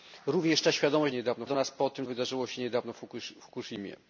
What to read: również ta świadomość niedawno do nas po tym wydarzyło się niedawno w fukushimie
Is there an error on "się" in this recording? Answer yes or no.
no